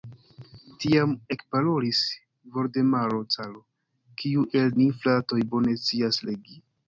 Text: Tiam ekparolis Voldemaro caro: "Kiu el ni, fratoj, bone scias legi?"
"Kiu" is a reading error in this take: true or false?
false